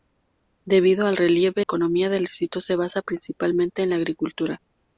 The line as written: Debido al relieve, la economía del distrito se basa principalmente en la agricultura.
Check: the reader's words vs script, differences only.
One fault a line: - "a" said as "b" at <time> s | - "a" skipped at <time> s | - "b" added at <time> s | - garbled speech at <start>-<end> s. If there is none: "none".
- "la" skipped at 1.6 s